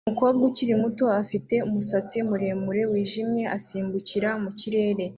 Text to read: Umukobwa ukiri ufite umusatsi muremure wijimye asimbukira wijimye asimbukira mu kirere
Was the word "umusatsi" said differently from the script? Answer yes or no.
no